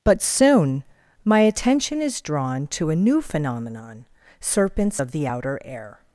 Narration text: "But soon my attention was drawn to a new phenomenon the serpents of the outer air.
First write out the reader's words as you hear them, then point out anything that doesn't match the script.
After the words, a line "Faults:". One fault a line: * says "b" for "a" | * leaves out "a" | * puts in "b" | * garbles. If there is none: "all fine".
"But soon my attention is drawn to a new phenomenon serpents of the outer air.
Faults:
* says "is" for "was"
* leaves out "the"